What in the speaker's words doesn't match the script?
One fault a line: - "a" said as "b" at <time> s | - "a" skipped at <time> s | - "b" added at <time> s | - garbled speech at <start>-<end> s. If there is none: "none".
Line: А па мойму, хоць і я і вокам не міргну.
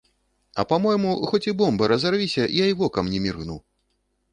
- "бомба разарвіся" added at 1.6 s